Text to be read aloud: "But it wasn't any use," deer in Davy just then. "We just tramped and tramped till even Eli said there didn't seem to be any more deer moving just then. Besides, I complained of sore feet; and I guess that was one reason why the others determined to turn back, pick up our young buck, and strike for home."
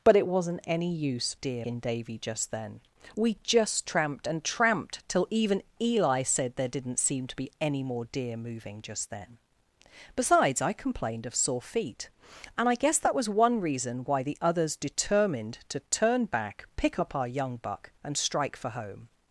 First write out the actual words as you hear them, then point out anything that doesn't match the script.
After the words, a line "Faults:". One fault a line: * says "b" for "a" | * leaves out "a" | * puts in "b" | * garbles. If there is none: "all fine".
"But it wasn't any use," deer in Davy just then. "We just tramped and tramped till even Eli said there didn't seem to be any more deer moving just then. Besides, I complained of sore feet; and I guess that was one reason why the others determined to turn back, pick up our young buck, and strike for home."
Faults:
all fine